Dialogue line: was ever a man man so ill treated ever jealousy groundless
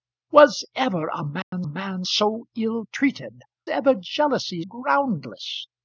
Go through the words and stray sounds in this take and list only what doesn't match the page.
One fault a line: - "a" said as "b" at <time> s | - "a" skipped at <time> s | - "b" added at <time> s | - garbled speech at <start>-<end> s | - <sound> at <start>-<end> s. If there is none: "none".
- dropout at 1.4-1.5 s